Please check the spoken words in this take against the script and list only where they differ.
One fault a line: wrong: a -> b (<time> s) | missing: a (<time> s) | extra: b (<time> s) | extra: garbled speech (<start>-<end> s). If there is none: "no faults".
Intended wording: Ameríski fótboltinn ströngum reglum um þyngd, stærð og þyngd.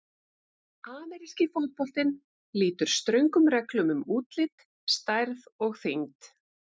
extra: lýtur (2.6 s)
wrong: þyngd -> útlit (4.2 s)